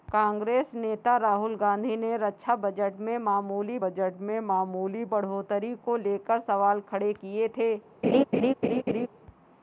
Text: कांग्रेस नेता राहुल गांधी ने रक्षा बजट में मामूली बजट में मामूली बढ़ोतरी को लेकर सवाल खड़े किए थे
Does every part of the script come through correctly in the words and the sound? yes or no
no